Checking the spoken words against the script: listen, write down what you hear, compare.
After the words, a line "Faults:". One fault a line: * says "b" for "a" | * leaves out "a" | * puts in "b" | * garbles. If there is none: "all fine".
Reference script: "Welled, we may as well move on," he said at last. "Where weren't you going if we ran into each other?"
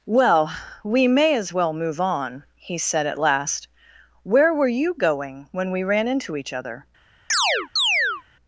"Well, we may as well move on," he said at last. "Where were you going when we ran into each other?"
Faults:
* says "Well" for "Welled"
* says "were" for "weren't"
* says "when" for "if"